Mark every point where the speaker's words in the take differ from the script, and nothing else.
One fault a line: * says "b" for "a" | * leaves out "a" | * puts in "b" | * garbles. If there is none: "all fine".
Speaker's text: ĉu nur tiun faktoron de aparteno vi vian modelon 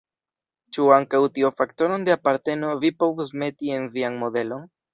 * says "ankaŭ" for "nur"
* puts in "povus meti en"